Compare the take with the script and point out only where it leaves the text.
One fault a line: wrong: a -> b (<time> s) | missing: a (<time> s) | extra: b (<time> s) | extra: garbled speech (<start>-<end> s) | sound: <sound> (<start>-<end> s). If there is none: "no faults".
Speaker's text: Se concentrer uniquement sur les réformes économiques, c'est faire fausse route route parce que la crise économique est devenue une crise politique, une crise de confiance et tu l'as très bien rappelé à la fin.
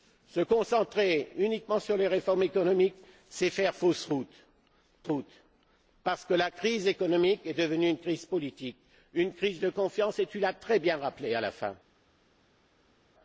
no faults